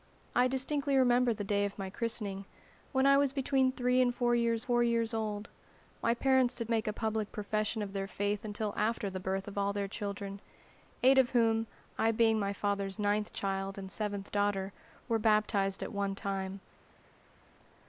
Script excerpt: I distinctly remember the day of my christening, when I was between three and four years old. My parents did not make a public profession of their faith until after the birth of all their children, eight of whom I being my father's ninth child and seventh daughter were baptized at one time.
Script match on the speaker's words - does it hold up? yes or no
no